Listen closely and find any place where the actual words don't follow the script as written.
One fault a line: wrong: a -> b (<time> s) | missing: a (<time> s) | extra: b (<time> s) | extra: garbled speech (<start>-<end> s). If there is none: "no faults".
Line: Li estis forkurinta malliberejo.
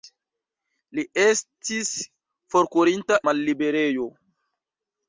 no faults